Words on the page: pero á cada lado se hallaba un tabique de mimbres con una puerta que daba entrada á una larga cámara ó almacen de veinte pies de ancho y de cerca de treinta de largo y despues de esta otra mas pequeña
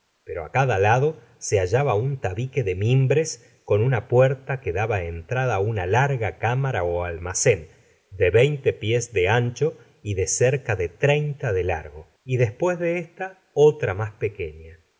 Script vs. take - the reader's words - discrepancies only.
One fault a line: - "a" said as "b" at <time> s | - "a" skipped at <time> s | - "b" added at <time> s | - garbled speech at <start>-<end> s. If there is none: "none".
none